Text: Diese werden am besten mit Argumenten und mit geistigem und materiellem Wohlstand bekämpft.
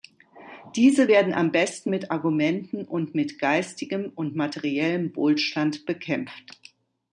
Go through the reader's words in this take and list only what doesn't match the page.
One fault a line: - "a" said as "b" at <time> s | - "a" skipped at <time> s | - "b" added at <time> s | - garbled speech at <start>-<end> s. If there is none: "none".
none